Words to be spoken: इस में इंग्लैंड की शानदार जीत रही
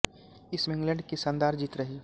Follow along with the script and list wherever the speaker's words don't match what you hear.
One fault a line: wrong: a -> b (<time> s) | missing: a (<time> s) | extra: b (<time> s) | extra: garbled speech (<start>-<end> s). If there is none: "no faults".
no faults